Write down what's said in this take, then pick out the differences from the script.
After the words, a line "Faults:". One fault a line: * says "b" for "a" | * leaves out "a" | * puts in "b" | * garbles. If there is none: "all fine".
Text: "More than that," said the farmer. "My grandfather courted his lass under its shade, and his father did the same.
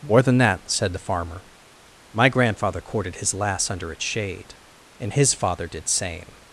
"More than that," said the farmer. "My grandfather courted his lass under its shade, and his father did same.
Faults:
* leaves out "the"